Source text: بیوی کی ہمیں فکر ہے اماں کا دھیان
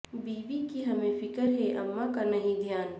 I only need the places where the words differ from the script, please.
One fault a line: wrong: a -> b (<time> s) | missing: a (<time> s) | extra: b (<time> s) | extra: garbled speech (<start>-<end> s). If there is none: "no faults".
extra: نہیں (2.2 s)